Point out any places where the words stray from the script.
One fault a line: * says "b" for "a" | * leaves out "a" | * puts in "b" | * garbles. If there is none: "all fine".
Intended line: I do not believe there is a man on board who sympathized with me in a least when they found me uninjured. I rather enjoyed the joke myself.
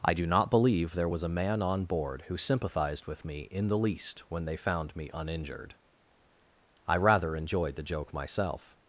* says "was" for "is"
* says "the" for "a"